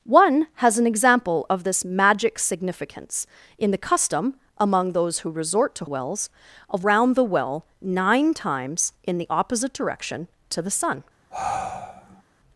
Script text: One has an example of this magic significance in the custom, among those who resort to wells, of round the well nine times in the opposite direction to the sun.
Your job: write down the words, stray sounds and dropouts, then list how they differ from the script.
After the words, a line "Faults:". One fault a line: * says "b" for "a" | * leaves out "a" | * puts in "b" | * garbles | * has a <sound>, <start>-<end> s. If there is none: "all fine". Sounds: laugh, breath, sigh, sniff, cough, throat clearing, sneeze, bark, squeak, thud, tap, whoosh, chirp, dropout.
One has an example of this magic significance in the custom, among those who resort to wells, of round the well nine times in the opposite direction to the sun.
Faults:
* has a sigh, 11.3-12.2 s